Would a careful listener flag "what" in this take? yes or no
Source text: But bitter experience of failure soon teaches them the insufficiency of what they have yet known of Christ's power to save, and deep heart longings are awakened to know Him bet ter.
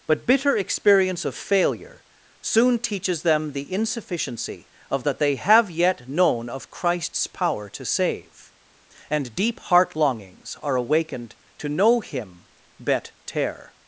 yes